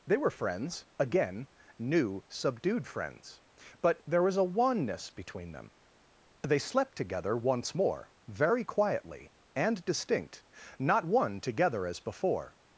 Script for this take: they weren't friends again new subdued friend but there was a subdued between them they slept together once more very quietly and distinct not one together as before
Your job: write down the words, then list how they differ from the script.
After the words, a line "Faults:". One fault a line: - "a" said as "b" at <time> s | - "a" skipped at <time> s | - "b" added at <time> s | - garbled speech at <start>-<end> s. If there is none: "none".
they were friends again new subdued friends but there was a wanness between them they slept together once more very quietly and distinct not one together as before
Faults:
- "weren't" said as "were" at 0.2 s
- "friend" said as "friends" at 2.9 s
- "subdued" said as "wanness" at 4.4 s